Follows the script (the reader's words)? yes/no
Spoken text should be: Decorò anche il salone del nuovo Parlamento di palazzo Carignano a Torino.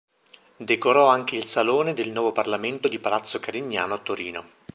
yes